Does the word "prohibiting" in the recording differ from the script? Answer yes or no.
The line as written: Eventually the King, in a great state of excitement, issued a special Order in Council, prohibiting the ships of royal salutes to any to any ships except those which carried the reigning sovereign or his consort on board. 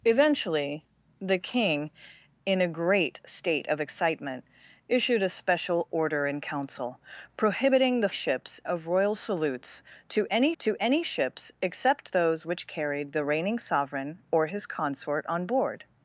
no